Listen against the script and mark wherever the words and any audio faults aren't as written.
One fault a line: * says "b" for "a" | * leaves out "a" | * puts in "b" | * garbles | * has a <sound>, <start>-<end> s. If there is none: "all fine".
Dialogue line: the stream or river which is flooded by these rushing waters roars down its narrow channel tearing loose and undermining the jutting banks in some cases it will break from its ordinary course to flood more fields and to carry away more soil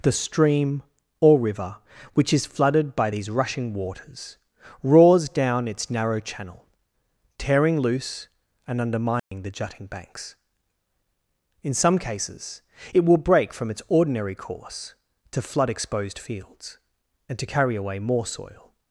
* has a dropout, 9.2-9.3 s
* says "exposed" for "more"